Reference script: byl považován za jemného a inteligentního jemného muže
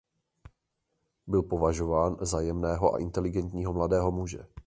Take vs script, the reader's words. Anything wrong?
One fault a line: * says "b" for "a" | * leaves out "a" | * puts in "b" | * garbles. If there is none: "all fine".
* says "mladého" for "jemného"